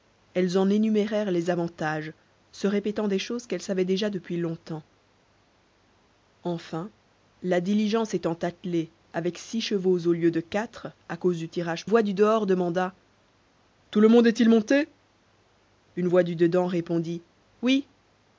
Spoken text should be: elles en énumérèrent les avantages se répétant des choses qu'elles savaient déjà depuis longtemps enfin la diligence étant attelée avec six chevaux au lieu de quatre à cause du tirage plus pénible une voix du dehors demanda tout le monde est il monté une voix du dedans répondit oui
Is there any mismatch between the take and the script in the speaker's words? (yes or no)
yes